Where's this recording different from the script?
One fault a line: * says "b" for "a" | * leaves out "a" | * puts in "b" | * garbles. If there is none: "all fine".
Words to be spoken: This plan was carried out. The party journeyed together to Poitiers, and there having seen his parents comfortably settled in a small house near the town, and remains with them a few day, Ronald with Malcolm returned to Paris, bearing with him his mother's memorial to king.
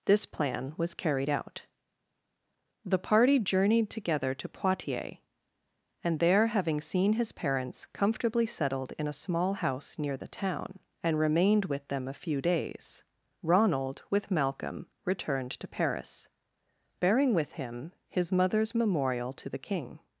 * says "remained" for "remains"
* says "days" for "day"
* puts in "the"